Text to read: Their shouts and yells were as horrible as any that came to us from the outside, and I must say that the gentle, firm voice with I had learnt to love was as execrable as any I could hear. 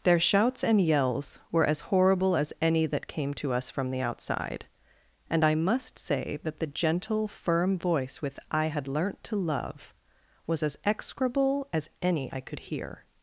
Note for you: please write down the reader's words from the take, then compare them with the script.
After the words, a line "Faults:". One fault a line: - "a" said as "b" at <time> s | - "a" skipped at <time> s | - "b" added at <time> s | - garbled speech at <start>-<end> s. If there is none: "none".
Their shouts and yells were as horrible as any that came to us from the outside, and I must say that the gentle, firm voice with I had learnt to love was as execrable as any I could hear.
Faults:
none